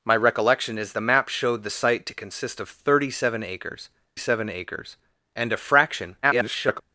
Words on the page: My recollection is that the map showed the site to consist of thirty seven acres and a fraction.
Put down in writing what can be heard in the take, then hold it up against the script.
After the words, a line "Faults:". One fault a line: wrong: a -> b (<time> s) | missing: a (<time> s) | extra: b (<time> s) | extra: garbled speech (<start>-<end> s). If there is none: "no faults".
My recollection is the map showed the site to consist of thirty seven acres seven acres and a fraction. [garbled]
Faults:
missing: that (0.9 s)
extra: seven acres (4.2 s)
extra: garbled speech (6.2-6.8 s)